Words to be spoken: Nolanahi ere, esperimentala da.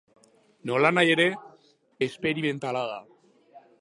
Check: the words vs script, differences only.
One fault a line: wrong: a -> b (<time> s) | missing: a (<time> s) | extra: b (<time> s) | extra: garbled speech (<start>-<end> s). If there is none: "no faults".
no faults